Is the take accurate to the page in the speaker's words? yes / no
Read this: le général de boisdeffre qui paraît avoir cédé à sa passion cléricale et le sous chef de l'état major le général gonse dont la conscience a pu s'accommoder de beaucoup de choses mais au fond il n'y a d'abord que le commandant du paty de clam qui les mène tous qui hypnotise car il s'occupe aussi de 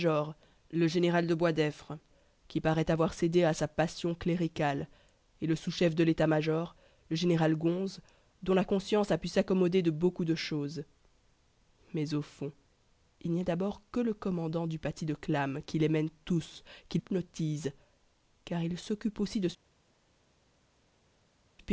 yes